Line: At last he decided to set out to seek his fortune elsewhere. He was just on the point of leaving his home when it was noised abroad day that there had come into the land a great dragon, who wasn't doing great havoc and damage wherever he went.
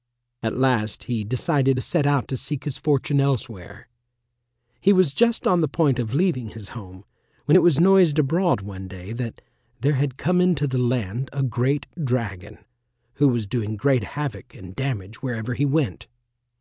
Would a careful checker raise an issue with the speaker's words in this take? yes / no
yes